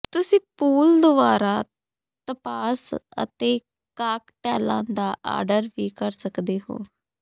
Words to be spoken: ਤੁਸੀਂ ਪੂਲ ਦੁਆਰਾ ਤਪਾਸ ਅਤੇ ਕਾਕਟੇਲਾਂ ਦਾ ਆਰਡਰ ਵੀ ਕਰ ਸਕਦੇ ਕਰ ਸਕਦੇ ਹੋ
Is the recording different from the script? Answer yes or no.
yes